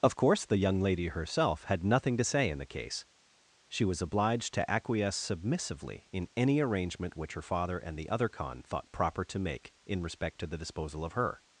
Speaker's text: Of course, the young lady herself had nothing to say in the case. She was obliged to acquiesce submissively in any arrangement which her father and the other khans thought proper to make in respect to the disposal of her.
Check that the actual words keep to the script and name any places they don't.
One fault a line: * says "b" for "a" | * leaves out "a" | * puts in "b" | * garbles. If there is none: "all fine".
* says "khan" for "khans"